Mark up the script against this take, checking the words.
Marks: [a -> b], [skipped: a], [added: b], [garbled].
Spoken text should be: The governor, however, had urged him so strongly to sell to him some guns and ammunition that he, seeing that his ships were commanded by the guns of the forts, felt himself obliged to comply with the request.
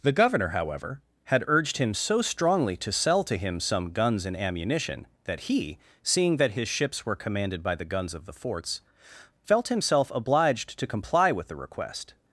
The governor, however, had urged him so strongly to sell to him some guns and ammunition that he, seeing that his ships were commanded by the guns of the forts, felt himself obliged to comply with the request.